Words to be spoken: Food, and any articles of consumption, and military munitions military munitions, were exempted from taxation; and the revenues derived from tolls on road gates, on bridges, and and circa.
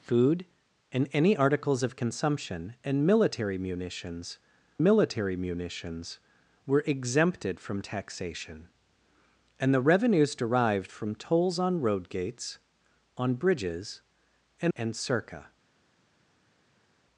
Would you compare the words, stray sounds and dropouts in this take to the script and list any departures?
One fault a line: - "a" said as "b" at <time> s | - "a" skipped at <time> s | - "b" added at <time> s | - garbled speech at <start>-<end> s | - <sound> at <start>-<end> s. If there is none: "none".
none